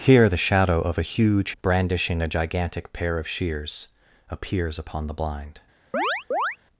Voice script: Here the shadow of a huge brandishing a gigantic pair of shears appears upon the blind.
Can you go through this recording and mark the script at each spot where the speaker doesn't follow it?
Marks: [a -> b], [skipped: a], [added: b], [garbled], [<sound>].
Here the shadow of a huge brandishing a gigantic pair of shears appears upon the blind. [chirp]